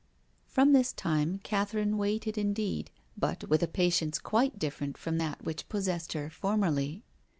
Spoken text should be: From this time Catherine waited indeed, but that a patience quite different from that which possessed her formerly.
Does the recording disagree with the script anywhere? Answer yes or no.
yes